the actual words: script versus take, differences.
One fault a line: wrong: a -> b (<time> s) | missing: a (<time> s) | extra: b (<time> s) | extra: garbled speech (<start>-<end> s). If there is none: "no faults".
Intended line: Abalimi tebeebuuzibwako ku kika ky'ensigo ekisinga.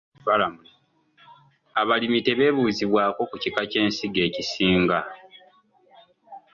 no faults